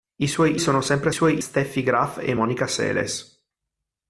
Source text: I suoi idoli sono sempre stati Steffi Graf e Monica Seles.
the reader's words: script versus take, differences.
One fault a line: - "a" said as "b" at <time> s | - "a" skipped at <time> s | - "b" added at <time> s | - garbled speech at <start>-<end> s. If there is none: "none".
- "idoli" skipped at 0.6 s
- "stati" said as "suoi" at 1.1 s